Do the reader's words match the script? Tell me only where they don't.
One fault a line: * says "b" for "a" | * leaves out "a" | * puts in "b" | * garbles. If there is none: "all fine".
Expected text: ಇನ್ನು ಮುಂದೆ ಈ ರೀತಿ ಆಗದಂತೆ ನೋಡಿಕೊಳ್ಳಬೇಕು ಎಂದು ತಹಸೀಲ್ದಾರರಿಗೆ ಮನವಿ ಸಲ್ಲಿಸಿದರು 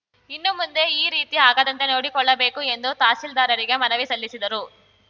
all fine